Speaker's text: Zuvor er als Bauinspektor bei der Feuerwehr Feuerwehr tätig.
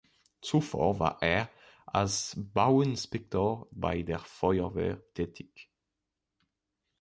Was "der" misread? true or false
false